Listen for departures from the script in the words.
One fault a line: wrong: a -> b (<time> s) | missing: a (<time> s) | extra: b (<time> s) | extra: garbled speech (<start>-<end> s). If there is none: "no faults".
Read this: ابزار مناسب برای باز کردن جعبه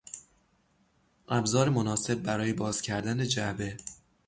no faults